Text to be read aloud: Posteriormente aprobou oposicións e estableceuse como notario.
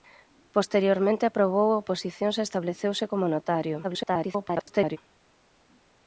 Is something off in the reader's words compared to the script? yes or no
yes